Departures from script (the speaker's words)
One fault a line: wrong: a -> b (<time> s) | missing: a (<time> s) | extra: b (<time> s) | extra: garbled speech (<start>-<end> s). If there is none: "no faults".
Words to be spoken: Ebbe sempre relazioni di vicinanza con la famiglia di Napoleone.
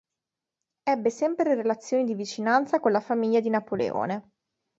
no faults